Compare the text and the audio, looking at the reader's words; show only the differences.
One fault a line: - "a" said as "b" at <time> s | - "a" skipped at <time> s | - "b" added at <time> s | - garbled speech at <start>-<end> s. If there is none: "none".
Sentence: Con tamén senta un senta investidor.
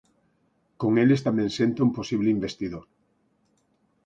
- "eles" added at 1.0 s
- "senta" said as "posible" at 2.0 s